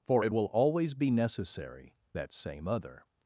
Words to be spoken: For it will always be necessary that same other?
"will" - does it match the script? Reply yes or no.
yes